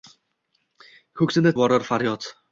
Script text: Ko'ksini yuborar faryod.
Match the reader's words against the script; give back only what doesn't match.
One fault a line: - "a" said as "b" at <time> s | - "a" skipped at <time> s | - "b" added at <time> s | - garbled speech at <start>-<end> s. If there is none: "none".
none